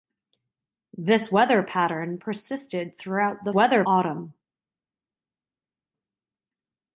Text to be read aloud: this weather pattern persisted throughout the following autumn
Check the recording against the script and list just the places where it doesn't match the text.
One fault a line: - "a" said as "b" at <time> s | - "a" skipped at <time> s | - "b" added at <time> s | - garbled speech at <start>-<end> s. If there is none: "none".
- "following" said as "weather" at 3.5 s